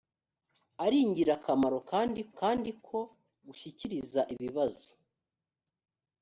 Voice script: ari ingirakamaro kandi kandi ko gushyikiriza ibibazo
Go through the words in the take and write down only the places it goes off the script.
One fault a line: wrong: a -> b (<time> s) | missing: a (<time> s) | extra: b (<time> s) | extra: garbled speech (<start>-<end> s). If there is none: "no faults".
no faults